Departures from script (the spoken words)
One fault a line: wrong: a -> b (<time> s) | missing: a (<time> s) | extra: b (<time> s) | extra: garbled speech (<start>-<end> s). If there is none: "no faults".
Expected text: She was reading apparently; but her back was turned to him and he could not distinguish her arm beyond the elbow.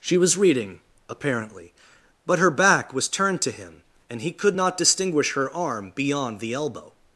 no faults